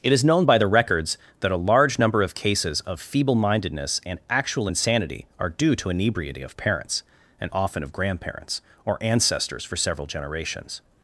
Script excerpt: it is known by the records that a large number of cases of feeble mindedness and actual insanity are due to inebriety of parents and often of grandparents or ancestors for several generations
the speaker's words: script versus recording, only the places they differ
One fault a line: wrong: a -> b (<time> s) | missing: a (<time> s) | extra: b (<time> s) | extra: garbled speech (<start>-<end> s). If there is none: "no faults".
no faults